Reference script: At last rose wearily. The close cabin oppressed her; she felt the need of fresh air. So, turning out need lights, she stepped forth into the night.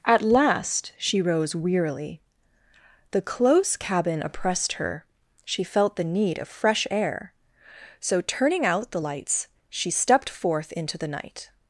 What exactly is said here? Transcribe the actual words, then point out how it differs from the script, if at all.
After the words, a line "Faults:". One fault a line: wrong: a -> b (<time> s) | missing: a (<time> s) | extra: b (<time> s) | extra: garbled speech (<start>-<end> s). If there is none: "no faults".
At last she rose wearily. The close cabin oppressed her; she felt the need of fresh air. So, turning out the lights, she stepped forth into the night.
Faults:
extra: she (1.0 s)
wrong: need -> the (8.9 s)